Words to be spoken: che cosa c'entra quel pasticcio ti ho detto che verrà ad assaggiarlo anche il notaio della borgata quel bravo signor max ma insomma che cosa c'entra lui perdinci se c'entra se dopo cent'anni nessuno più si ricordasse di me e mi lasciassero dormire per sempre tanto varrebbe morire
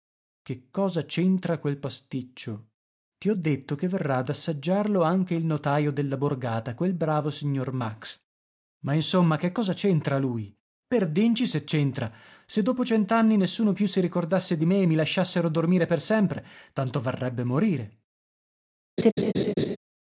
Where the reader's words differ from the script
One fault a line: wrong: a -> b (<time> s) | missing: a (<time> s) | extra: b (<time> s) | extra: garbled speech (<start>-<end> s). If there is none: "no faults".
no faults